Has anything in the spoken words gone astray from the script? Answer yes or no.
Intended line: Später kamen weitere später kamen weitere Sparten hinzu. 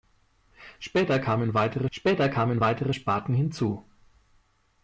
no